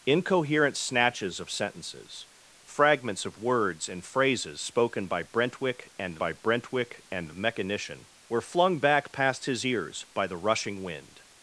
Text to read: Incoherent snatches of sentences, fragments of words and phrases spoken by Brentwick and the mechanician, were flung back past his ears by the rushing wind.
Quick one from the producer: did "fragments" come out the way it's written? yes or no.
yes